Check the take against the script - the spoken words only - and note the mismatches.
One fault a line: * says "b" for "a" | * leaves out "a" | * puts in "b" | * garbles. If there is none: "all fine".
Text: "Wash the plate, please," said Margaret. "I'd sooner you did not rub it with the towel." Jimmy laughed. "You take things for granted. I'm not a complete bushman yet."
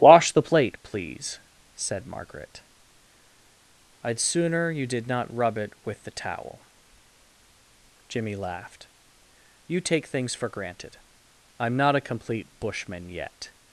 all fine